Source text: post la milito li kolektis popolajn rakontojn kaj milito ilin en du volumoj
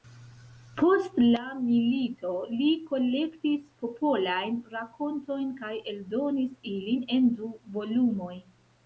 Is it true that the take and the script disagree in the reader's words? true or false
true